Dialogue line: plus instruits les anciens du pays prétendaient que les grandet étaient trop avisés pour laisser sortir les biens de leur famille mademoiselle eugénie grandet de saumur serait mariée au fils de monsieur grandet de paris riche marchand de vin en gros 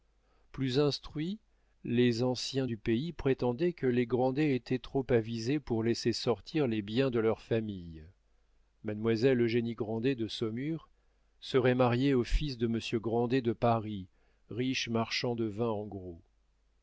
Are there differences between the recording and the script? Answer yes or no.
no